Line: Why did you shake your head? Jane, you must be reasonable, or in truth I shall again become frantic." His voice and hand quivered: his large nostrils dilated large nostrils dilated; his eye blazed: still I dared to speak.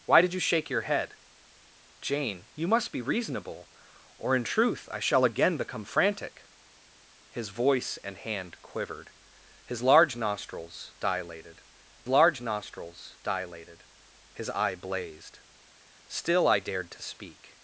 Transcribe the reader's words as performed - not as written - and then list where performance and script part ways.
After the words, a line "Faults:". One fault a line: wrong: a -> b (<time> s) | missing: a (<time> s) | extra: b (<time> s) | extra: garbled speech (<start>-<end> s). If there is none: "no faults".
Why did you shake your head? Jane, you must be reasonable, or in truth I shall again become frantic." His voice and hand quivered: his large nostrils dilated large nostrils dilated; his eye blazed: still I dared to speak.
Faults:
no faults